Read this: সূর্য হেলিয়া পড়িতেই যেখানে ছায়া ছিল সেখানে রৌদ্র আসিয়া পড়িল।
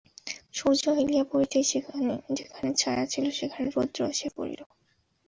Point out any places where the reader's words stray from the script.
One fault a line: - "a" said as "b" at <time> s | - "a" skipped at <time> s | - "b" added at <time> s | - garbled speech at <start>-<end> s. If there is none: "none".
none